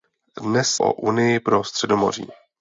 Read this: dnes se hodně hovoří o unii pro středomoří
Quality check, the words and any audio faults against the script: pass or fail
fail